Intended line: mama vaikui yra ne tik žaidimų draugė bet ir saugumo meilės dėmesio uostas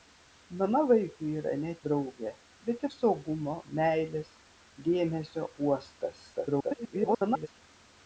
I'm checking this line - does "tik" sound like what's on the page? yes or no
no